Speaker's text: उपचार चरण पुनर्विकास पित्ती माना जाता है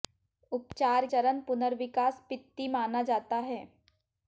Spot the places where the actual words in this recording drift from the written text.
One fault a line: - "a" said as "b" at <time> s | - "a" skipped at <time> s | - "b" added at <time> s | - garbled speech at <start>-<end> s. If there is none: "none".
none